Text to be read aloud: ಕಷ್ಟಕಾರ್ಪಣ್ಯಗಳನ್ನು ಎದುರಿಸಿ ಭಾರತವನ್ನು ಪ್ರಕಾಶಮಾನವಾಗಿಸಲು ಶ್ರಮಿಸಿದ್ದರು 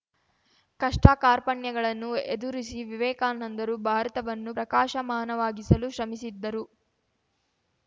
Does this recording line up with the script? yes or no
no